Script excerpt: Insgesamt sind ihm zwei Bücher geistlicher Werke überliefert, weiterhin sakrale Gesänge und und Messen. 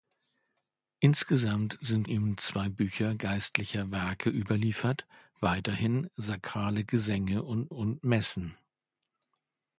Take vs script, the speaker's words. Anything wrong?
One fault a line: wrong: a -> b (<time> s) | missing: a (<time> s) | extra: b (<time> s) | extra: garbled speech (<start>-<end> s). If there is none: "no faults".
no faults